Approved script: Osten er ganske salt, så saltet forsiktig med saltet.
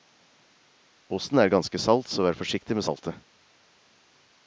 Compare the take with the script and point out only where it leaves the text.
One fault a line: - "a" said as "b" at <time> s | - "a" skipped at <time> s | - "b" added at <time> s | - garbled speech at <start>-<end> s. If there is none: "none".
- "saltet" said as "vær" at 2.2 s